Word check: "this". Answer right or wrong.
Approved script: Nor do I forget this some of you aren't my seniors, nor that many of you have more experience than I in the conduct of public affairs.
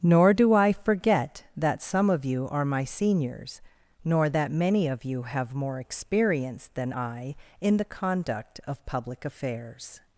wrong